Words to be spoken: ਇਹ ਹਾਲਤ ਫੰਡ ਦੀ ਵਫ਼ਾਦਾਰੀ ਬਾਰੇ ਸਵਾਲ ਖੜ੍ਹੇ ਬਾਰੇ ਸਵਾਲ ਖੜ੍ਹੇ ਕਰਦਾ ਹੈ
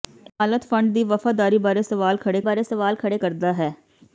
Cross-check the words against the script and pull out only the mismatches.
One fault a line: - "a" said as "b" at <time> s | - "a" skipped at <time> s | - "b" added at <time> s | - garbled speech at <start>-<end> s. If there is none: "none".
none